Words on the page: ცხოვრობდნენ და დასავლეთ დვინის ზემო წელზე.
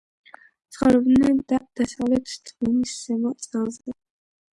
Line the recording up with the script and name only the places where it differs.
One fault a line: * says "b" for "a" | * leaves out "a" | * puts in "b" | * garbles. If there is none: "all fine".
all fine